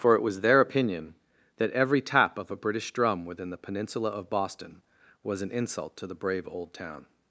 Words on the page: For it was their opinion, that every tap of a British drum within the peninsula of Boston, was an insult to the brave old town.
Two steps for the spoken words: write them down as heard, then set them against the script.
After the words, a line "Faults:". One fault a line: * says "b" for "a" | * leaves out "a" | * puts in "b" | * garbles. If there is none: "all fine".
For it was their opinion, that every tap of a British drum within the peninsula of Boston, was an insult to the brave old town.
Faults:
all fine